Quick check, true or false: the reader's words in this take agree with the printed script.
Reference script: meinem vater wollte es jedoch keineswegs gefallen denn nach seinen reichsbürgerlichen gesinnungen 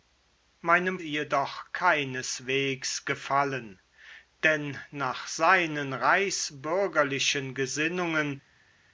false